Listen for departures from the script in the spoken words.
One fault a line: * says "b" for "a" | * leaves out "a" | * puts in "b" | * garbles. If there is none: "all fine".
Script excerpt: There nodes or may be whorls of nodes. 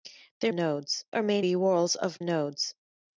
all fine